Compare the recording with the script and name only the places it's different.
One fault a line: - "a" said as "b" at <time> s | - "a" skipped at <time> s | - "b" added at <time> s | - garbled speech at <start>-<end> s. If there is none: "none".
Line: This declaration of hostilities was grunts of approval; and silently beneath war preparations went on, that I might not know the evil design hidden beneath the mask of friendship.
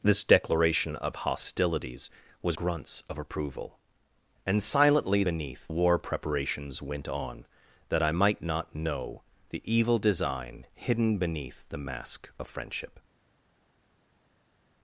none